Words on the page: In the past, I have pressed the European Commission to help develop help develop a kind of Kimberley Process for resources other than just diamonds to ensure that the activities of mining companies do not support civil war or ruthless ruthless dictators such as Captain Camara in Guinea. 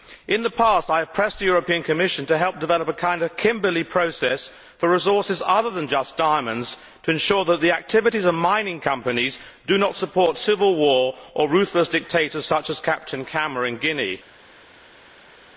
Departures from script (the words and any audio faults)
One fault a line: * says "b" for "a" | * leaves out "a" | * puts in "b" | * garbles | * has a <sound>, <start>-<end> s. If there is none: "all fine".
* leaves out "help develop"
* leaves out "ruthless"